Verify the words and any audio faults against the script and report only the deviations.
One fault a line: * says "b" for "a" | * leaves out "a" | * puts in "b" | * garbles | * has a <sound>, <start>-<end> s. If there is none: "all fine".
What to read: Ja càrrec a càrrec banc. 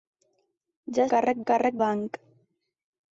all fine